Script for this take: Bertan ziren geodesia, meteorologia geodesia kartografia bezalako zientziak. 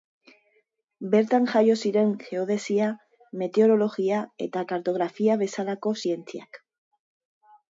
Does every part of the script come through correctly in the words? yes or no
no